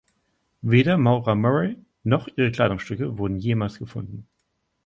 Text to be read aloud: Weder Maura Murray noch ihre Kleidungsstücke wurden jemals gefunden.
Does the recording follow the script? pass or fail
pass